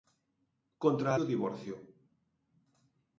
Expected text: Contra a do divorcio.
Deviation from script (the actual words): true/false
false